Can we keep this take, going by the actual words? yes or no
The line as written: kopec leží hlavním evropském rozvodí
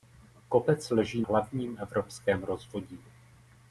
yes